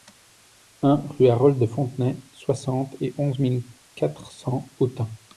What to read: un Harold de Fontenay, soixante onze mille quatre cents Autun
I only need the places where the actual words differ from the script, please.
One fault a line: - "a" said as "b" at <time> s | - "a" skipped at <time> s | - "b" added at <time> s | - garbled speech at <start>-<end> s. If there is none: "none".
- "rue" added at 1.1 s
- "et" added at 3.0 s